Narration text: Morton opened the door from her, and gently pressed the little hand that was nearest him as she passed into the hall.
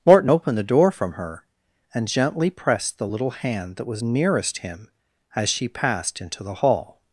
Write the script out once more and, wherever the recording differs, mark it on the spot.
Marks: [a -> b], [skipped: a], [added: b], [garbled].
Morton opened the door from her, and gently pressed the little hand that was nearest him as she passed into the hall.